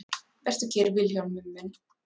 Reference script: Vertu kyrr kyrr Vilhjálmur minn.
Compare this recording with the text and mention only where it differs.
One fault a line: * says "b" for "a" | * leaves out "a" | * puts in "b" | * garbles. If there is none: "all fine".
* leaves out "kyrr"